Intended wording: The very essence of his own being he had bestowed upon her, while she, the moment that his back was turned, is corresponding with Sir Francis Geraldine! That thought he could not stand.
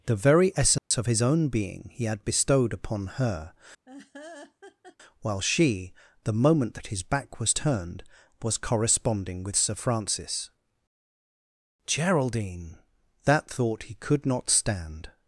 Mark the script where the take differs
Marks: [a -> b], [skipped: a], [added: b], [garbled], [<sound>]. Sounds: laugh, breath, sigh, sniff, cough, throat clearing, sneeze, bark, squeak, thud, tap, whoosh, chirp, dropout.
The very essence [dropout] of his own being he had bestowed upon her, [laugh] while she, the moment that his back was turned, [is -> was] corresponding with Sir Francis Geraldine! That thought he could not stand.